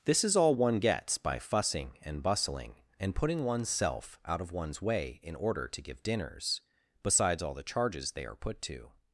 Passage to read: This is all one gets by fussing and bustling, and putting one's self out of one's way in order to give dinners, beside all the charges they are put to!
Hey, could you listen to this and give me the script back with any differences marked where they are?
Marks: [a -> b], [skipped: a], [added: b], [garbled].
This is all one gets by fussing and bustling, and putting one's self out of one's way in order to give dinners, [beside -> besides] all the charges they are put to!